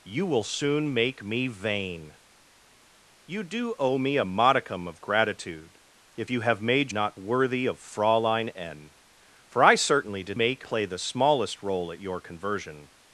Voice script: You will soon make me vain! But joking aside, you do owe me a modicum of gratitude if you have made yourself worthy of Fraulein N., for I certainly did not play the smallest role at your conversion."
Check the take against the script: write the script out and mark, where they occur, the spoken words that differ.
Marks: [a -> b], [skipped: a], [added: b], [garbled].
You will soon make me vain! [skipped: But joking aside,] you do owe me a modicum of gratitude if you have made [yourself -> not] worthy of Fraulein N., for I certainly did [not -> make] play the smallest role at your conversion."